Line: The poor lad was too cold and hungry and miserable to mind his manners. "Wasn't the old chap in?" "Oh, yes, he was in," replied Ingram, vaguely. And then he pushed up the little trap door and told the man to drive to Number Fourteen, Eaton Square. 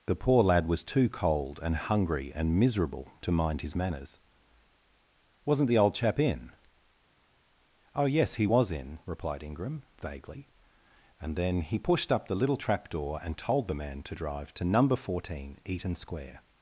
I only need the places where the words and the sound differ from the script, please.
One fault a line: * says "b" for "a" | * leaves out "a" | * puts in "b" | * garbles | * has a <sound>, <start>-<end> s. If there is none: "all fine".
all fine